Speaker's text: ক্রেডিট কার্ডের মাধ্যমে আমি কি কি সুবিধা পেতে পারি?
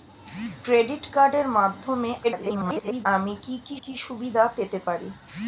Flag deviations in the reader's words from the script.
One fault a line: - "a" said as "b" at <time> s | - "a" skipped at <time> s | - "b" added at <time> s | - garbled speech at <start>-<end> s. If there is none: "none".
- garbled speech at 2.2-3.1 s
- "কি" added at 3.8 s